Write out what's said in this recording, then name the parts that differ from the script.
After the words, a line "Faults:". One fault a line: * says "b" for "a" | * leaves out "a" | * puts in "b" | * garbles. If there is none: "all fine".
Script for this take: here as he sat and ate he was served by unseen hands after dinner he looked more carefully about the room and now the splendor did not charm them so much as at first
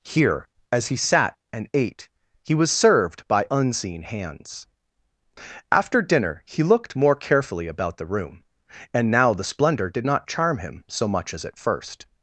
here as he sat and ate he was served by unseen hands after dinner he looked more carefully about the room and now the splendor did not charm him so much as at first
Faults:
* says "him" for "them"